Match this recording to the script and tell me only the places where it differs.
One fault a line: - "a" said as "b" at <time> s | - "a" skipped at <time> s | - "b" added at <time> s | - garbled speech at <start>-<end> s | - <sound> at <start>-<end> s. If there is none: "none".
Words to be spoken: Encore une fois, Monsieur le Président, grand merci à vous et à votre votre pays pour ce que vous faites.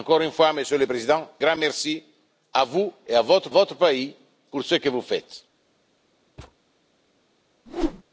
- thud at 6.4-6.6 s
- whoosh at 7.7-8.0 s